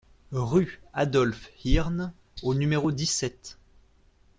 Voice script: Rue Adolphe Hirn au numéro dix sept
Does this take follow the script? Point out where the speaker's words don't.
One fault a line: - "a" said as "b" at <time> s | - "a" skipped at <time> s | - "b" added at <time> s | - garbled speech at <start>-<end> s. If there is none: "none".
none